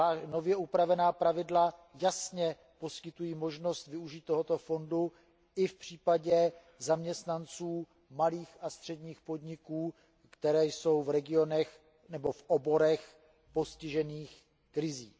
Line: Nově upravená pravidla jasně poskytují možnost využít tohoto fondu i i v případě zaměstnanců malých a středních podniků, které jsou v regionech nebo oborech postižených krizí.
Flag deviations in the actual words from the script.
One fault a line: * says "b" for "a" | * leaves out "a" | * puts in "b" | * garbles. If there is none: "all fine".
* leaves out "i"
* puts in "v"